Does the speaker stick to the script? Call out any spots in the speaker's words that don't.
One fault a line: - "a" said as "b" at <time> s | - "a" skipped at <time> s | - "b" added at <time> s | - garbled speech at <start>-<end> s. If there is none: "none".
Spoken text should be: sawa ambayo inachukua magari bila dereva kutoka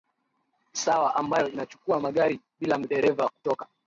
none